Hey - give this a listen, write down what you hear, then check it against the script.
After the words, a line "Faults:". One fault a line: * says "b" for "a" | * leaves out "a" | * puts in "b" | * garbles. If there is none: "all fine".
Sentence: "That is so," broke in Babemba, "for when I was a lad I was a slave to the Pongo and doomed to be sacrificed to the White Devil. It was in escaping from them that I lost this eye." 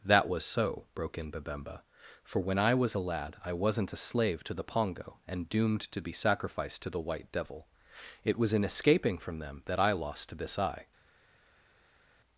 "That was so," broke in Babemba, "for when I was a lad I wasn't a slave to the Pongo and doomed to be sacrificed to the White Devil. It was in escaping from them that I lost this eye."
Faults:
* says "was" for "is"
* says "wasn't" for "was"